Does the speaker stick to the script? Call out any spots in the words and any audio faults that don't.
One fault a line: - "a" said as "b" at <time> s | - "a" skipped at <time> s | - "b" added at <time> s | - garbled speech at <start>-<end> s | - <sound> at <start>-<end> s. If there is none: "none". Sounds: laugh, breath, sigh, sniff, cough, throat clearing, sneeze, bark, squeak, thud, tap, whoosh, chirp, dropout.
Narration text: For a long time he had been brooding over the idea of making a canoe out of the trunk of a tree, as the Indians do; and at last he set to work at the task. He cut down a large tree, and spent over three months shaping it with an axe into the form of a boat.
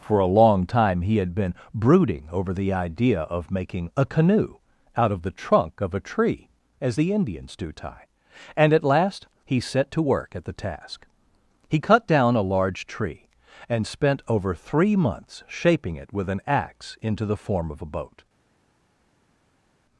- "tie" added at 7.7 s